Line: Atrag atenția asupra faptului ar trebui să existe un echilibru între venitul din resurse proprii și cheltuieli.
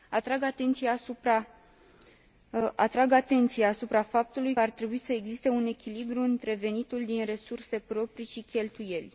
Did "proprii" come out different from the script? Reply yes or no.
no